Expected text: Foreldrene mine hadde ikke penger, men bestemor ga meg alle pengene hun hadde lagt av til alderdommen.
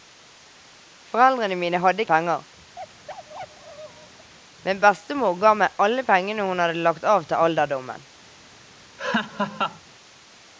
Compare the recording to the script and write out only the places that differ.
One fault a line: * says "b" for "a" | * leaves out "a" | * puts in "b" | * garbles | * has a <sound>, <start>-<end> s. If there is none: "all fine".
* leaves out "ikke"
* has a bark, 2.8-4.3 s
* has a laugh, 9.0-9.8 s